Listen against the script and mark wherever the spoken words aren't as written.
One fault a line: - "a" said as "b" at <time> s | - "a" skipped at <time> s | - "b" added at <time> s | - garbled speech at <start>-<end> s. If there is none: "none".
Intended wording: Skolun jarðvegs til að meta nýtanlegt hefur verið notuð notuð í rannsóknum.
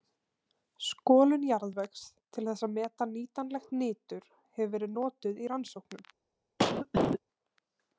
- "þess" added at 2.5 s
- "nitur" added at 3.8 s
- "notuð" skipped at 5.5 s